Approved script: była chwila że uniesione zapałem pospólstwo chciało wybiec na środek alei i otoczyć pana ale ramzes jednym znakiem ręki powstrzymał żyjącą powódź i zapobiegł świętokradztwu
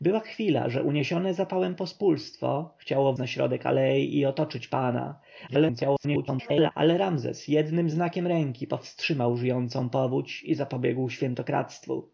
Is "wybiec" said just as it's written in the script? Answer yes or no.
no